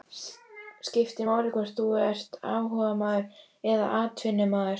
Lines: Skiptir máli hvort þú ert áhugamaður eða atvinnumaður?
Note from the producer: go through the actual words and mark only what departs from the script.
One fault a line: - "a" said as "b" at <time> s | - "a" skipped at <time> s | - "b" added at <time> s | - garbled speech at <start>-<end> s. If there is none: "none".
none